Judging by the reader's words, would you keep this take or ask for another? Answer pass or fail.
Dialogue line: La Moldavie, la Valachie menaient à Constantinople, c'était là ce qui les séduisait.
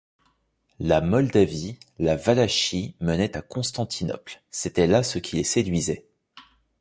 pass